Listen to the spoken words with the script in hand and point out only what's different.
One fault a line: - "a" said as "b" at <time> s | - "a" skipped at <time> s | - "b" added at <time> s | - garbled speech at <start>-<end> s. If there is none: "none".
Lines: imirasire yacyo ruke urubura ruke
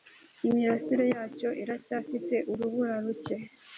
- "ruke" said as "iracyafite" at 1.6 s